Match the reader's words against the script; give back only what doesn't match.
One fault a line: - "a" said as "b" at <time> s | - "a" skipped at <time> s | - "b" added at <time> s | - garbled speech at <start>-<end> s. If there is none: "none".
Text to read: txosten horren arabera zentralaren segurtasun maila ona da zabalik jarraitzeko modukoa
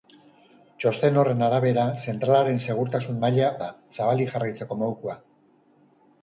- "ona" skipped at 3.5 s